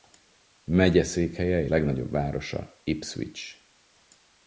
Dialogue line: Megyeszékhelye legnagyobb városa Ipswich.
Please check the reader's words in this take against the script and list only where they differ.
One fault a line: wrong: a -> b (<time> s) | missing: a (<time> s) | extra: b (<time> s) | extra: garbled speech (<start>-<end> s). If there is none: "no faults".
no faults